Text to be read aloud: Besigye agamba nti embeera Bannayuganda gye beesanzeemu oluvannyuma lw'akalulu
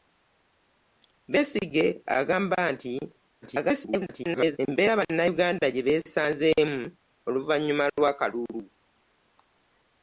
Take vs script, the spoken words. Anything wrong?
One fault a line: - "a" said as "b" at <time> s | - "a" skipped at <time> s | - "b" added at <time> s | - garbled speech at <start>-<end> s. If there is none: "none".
- garbled speech at 3.4-4.6 s